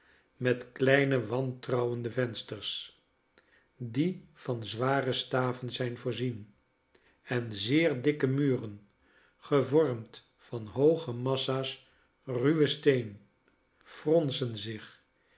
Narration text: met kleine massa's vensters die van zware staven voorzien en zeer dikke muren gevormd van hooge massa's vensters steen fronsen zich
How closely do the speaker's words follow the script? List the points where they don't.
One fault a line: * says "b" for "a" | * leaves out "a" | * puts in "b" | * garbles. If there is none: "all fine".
* says "wantrouwende" for "massa's"
* puts in "zijn"
* says "ruwen" for "vensters"